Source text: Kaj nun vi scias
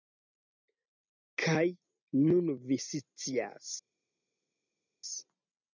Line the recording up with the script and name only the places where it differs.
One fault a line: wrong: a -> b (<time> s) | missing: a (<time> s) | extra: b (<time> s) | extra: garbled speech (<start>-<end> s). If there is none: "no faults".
no faults